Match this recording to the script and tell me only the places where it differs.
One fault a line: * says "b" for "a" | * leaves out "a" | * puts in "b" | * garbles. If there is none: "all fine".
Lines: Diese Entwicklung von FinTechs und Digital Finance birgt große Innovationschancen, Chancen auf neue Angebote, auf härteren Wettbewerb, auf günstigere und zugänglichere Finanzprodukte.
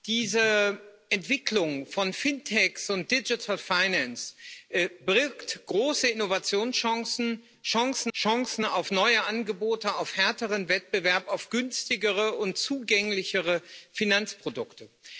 * puts in "Chancen"